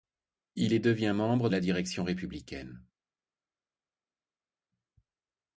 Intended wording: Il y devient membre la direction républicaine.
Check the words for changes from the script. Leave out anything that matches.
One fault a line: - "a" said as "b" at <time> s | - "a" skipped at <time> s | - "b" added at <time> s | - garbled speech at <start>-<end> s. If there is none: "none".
none